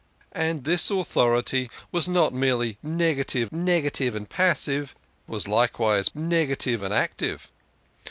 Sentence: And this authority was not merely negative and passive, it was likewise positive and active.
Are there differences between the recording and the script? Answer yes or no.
yes